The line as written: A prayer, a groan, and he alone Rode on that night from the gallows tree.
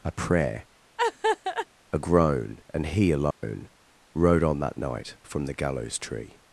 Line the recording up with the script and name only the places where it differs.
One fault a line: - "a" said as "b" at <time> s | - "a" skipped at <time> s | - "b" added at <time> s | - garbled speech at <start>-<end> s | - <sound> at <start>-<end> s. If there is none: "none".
- laugh at 1.0-1.7 s
- dropout at 3.3-3.4 s